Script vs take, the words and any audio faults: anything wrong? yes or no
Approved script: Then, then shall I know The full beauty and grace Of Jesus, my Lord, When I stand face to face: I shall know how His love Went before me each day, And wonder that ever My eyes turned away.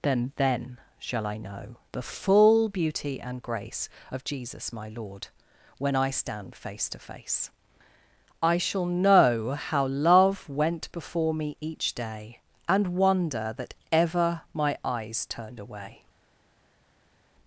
yes